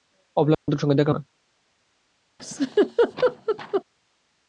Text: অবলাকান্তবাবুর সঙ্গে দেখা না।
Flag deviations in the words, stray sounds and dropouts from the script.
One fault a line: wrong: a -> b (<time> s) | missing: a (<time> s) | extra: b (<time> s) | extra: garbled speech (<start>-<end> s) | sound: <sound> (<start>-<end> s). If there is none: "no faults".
sound: dropout (0.5-0.7 s)
sound: laugh (2.4-3.8 s)